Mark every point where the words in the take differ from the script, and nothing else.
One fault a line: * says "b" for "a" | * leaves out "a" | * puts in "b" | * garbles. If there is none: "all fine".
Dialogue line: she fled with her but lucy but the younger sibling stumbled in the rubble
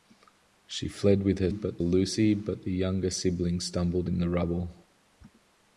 all fine